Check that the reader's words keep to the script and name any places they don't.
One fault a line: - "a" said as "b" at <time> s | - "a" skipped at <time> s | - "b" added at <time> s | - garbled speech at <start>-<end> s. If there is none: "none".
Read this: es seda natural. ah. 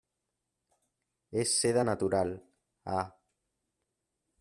none